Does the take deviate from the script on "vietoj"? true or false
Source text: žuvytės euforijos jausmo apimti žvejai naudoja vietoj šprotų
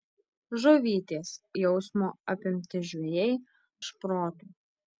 true